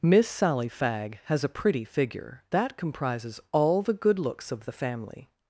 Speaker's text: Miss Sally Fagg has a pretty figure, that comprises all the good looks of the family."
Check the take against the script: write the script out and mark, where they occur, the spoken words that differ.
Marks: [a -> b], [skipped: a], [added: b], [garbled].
Miss Sally Fagg has a pretty figure, that comprises all the good looks of the family."